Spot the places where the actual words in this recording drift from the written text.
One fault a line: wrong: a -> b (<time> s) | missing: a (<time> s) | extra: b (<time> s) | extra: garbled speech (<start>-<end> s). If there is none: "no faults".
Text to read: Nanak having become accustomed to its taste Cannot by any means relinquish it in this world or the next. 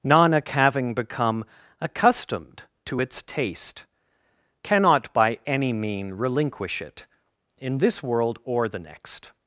wrong: means -> mean (5.7 s)